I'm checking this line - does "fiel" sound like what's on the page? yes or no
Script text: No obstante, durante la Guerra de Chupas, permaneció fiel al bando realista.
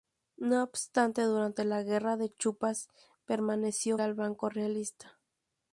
no